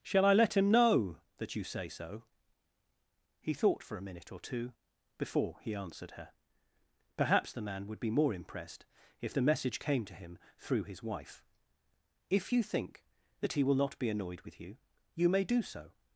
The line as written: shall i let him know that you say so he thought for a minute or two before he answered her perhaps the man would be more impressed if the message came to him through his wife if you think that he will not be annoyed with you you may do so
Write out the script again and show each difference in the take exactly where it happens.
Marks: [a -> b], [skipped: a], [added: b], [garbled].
shall i let him know that you say so he thought for a minute or two before he answered her perhaps the man would be more impressed if the message came to him through his wife if you think that he will not be annoyed with you you may do so